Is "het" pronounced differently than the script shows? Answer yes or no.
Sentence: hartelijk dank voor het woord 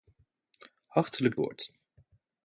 yes